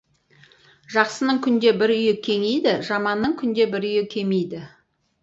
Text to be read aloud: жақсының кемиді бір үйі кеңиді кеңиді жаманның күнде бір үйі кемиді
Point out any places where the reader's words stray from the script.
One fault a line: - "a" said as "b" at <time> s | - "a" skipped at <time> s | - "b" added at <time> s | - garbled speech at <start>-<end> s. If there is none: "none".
- "кемиді" said as "күнде" at 1.5 s
- "кеңиді" skipped at 2.7 s